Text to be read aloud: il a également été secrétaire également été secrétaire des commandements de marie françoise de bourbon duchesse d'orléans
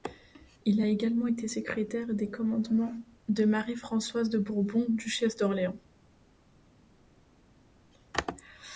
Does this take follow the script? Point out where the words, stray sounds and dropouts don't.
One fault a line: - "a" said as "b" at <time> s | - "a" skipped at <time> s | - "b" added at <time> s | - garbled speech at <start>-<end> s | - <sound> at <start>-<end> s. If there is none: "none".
- "également été secrétaire" skipped at 2.1 s